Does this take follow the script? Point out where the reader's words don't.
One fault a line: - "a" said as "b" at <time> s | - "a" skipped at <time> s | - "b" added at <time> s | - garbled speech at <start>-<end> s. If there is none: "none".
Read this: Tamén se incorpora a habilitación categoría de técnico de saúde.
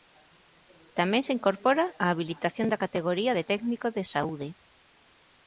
- "da" added at 2.7 s